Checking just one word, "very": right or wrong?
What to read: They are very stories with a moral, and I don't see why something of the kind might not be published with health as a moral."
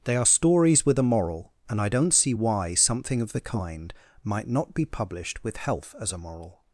wrong